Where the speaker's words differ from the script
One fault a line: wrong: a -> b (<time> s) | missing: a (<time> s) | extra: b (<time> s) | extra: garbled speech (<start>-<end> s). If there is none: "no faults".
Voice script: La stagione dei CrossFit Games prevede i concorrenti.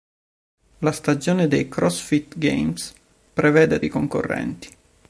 no faults